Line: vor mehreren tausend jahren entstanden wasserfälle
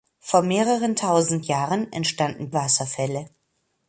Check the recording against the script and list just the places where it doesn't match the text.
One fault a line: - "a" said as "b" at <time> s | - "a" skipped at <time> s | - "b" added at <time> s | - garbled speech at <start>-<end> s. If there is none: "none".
none